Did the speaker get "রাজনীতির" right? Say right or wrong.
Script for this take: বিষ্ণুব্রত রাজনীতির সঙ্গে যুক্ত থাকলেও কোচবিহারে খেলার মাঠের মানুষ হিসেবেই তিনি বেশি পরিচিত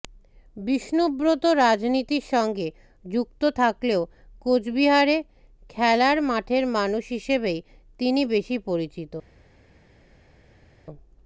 right